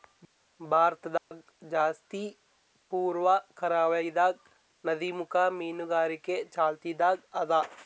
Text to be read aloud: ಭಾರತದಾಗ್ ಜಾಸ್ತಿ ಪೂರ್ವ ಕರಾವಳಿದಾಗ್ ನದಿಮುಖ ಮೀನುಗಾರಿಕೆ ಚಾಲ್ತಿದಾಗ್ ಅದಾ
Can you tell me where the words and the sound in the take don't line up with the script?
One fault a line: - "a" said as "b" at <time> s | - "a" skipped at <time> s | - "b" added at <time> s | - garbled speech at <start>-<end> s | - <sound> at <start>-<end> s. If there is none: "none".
- dropout at 1.2-1.3 s